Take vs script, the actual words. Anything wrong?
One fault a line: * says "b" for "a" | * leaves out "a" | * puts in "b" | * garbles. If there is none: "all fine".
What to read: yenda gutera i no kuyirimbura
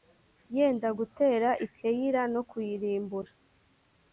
* puts in "keyila"